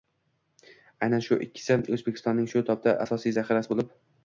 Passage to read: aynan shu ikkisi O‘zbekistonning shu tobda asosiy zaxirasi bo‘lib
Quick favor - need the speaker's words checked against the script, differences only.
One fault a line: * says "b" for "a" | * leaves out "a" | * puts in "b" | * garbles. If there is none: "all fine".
all fine